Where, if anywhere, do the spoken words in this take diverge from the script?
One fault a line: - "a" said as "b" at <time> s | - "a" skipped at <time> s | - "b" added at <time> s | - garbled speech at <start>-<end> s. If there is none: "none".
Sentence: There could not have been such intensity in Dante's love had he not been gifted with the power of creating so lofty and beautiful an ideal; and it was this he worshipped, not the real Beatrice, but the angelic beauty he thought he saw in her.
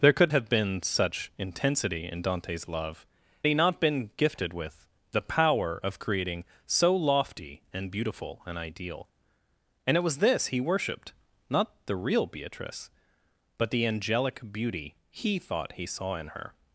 - "not" skipped at 0.3 s
- "had" skipped at 3.1 s